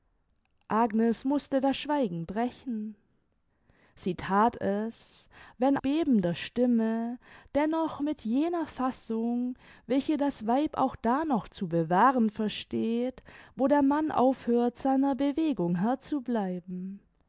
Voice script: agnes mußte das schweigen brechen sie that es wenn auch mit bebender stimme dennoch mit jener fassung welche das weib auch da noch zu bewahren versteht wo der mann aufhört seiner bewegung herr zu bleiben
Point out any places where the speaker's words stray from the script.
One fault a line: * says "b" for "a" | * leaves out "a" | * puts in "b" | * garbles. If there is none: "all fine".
* leaves out "auch mit"